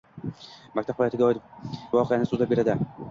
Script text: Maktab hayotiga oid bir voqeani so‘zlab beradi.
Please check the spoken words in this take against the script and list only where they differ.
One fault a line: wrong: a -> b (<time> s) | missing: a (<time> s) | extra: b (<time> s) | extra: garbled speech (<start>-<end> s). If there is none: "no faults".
missing: bir (1.4 s)